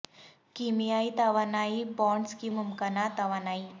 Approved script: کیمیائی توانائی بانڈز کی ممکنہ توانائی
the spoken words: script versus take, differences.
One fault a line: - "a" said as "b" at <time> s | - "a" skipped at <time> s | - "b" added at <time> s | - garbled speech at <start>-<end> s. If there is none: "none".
none